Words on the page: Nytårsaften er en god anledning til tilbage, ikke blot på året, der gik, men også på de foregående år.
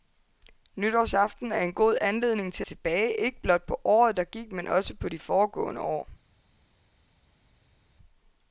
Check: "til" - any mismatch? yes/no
no